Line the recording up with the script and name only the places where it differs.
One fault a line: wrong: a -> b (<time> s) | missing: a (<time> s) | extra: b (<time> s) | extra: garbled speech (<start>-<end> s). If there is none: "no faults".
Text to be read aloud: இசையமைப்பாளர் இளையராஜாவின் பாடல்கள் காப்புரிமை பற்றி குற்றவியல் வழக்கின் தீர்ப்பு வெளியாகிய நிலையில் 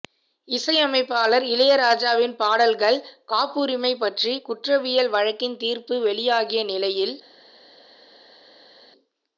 no faults